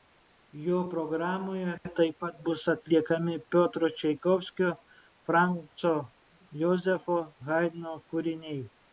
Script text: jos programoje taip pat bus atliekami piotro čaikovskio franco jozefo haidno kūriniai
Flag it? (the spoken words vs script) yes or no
yes